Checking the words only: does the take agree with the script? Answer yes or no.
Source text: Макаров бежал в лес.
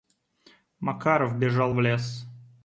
yes